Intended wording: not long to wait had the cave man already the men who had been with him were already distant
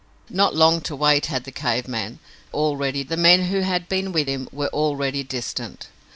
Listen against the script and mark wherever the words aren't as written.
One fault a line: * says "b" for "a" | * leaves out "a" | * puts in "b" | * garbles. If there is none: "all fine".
all fine